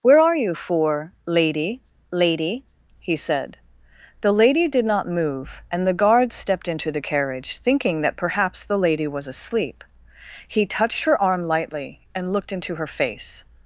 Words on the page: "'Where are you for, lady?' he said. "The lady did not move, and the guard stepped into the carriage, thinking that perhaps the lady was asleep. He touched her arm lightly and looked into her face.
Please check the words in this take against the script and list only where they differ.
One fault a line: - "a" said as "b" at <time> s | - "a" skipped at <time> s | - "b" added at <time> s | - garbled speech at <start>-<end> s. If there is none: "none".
- "lady" added at 2.1 s